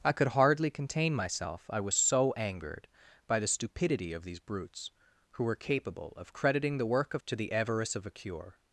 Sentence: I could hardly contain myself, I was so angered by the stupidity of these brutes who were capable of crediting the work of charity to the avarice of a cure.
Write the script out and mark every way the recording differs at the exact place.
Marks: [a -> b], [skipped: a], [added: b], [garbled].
I could hardly contain myself, I was so angered by the stupidity of these brutes who were capable of crediting the work of [skipped: charity] to the avarice of a cure.